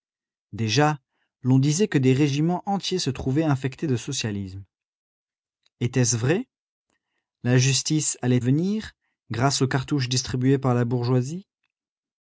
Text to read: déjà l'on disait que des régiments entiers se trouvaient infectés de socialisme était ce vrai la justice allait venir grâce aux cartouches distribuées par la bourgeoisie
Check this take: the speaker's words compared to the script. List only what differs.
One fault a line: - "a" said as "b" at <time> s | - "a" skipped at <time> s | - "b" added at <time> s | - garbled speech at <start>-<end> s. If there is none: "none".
none